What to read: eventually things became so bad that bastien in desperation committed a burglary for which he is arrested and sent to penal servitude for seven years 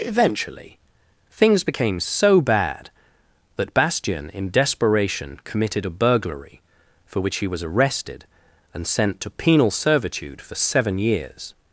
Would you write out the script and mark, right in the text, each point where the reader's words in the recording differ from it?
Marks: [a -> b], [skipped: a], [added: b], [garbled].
eventually things became so bad that bastien in desperation committed a burglary for which he [is -> was] arrested and sent to penal servitude for seven years